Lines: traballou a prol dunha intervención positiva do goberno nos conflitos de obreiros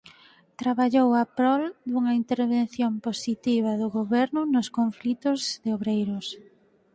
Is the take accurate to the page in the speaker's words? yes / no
yes